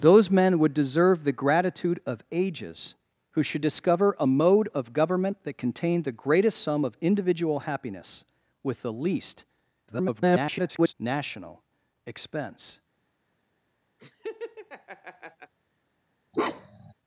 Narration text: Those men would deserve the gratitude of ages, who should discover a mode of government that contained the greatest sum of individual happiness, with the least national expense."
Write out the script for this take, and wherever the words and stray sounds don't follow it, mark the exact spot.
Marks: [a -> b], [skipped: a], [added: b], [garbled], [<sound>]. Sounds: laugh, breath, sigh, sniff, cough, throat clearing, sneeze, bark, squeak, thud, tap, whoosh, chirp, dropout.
Those men would deserve the gratitude of ages, who should discover a mode of government that contained the greatest sum of individual happiness, with the least [garbled] national expense." [laugh] [bark]